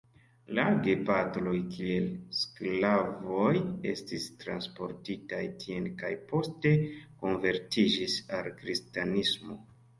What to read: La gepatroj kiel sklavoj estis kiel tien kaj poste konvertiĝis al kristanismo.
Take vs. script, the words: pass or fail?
fail